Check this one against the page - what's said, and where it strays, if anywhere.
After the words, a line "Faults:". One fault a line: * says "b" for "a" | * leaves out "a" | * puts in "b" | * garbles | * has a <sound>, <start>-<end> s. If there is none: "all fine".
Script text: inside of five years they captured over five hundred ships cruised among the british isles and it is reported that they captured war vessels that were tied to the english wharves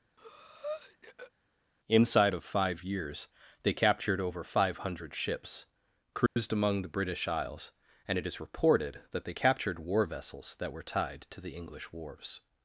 inside of five years they captured over five hundred ships cruised among the british isles and it is reported that they captured war vessels that were tied to the english wharves
Faults:
* has a breath, 0.2-1.3 s
* has a dropout, 6.3-6.4 s